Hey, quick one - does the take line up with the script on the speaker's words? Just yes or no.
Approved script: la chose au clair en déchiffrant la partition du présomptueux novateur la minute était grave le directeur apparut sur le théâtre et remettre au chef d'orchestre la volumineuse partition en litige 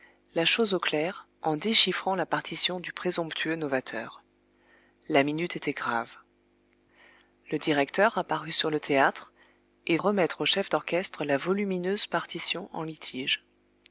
yes